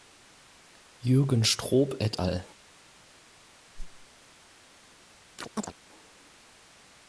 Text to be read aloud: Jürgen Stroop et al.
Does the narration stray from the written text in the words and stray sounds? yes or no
yes